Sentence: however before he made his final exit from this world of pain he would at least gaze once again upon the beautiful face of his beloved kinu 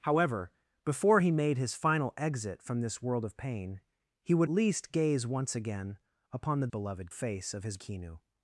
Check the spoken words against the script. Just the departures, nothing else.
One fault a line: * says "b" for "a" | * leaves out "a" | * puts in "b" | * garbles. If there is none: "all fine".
* leaves out "at"
* says "beloved" for "beautiful"
* leaves out "beloved"